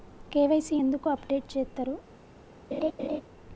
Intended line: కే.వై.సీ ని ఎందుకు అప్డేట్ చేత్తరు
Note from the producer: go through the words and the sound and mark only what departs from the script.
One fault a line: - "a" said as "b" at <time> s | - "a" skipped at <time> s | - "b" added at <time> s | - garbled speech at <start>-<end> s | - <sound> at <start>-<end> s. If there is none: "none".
- "ని" skipped at 0.8 s
- laugh at 2.7-3.2 s